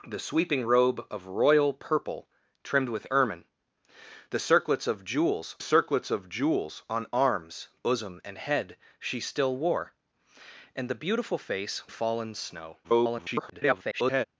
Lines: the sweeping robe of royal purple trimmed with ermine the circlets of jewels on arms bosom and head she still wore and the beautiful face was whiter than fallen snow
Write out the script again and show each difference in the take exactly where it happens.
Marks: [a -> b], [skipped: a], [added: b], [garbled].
the sweeping robe of royal purple trimmed with ermine the circlets of jewels [added: circlets of jewels] on arms bosom and head she still wore and the beautiful face [skipped: was whiter than] fallen snow [garbled]